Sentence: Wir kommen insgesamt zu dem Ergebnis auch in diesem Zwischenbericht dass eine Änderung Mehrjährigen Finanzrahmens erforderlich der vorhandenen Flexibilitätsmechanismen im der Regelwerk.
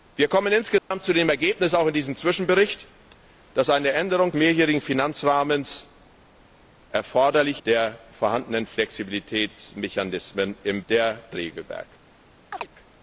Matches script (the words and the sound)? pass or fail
fail